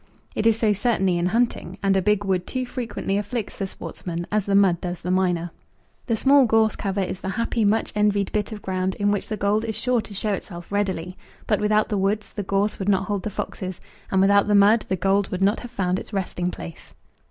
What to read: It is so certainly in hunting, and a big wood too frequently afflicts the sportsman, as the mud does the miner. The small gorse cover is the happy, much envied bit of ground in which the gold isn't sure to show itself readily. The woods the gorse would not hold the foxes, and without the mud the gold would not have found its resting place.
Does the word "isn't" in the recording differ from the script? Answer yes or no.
yes